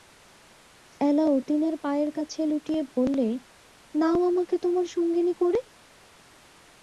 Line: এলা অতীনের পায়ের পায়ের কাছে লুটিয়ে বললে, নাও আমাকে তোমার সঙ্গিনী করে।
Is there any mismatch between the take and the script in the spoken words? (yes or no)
yes